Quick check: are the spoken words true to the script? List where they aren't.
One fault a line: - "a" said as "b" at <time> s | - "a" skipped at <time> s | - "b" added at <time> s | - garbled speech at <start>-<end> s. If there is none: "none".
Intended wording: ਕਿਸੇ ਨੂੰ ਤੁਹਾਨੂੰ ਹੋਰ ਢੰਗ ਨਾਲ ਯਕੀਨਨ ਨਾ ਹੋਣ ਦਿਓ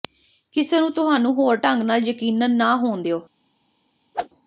none